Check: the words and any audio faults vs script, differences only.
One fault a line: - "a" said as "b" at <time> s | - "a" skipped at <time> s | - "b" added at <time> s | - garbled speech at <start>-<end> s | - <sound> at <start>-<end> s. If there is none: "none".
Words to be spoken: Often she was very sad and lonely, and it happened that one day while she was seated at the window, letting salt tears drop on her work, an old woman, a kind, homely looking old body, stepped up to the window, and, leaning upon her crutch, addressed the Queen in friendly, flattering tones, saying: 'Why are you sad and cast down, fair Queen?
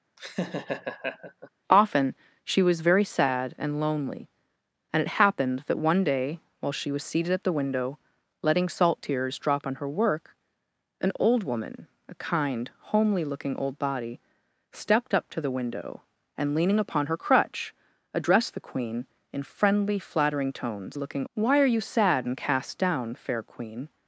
- laugh at 0.2-1.5 s
- "saying" said as "looking" at 20.9 s